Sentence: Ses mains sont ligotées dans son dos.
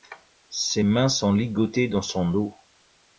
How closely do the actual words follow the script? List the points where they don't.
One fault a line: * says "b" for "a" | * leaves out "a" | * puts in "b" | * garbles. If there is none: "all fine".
all fine